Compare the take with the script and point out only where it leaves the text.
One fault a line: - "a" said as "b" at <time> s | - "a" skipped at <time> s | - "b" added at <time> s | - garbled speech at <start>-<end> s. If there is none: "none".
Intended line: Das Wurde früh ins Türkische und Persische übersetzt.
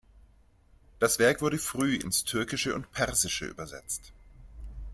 - "Werk" added at 1.2 s